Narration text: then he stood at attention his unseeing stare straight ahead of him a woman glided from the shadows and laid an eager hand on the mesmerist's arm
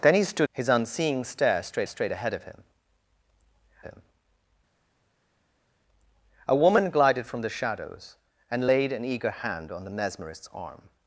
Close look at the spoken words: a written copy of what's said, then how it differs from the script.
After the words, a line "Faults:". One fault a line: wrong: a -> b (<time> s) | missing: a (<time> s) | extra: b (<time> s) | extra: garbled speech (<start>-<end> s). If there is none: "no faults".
then he stood his unseeing stare straight straight ahead of him him a woman glided from the shadows and laid an eager hand on the mesmerist's arm
Faults:
missing: at attention (0.5 s)
extra: straight (1.9 s)
extra: him (3.8 s)